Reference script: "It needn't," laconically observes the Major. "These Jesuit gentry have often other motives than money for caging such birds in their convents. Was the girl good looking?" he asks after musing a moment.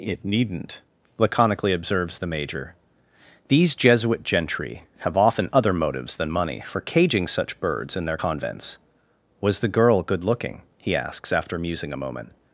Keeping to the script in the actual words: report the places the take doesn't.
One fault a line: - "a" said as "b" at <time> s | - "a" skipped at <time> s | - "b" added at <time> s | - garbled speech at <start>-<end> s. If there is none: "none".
none